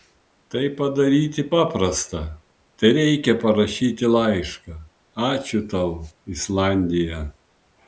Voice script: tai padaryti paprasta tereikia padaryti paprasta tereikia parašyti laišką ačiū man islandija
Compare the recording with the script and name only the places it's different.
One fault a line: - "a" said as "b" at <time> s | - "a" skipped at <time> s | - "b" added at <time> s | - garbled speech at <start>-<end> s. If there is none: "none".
- "padaryti paprasta tereikia" skipped at 3.3 s
- "man" said as "tau" at 5.7 s